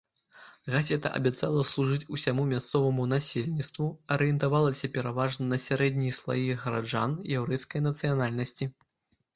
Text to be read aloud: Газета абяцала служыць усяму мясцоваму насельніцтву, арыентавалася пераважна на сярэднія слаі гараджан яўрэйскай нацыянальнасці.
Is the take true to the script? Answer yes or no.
yes